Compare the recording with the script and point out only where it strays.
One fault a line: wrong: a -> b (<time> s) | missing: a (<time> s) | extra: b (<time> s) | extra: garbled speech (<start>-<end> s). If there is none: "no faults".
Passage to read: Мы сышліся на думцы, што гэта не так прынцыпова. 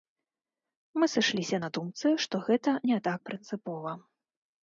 no faults